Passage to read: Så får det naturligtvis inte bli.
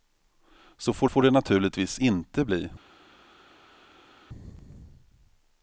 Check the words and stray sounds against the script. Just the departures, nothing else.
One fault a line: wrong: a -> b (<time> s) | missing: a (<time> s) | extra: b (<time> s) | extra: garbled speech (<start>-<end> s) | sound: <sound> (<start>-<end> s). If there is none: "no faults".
extra: får (1.1 s)